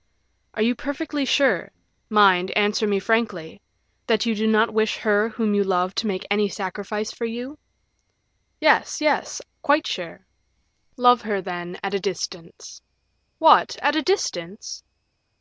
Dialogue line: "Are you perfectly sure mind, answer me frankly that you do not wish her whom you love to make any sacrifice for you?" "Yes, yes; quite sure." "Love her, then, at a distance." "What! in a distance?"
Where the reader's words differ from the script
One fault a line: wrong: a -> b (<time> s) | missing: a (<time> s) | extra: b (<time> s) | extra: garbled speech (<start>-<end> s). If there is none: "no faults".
wrong: in -> at (13.8 s)